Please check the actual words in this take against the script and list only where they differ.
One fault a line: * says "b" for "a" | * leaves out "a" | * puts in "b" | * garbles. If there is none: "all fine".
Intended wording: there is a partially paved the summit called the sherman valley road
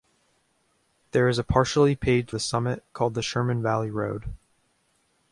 all fine